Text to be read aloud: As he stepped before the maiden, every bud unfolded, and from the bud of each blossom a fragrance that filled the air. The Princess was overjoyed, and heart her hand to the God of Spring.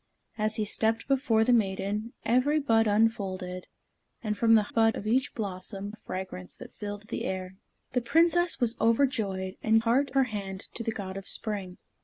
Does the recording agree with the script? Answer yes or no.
yes